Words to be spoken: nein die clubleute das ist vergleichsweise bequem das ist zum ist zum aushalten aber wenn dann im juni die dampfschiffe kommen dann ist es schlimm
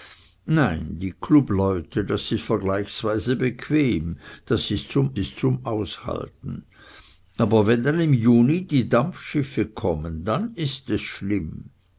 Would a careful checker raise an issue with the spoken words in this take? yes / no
no